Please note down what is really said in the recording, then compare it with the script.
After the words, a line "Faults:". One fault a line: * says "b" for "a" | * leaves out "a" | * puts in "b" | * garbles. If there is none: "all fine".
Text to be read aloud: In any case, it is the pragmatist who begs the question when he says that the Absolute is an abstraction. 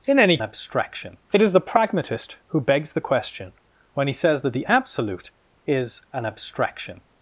In any abstraction, it is the pragmatist who begs the question when he says that the Absolute is an abstraction.
Faults:
* says "abstraction" for "case"